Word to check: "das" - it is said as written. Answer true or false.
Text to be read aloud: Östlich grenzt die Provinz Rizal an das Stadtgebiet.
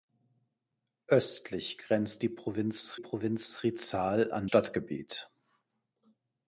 false